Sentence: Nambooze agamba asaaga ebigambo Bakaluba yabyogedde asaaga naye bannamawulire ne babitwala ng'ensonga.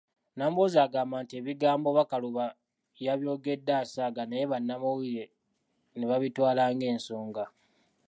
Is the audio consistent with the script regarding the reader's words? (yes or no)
no